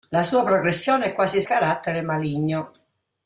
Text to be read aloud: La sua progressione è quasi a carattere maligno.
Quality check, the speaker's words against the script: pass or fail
pass